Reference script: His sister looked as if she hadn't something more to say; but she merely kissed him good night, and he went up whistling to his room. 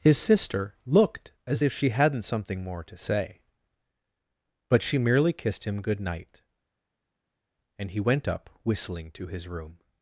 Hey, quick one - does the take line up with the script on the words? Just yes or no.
yes